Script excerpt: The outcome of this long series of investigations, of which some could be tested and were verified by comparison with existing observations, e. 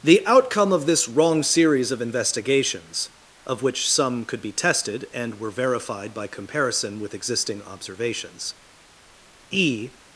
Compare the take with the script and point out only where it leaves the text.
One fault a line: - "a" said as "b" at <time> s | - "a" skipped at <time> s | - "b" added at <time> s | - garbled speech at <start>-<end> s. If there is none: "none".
- "long" said as "wrong" at 1.1 s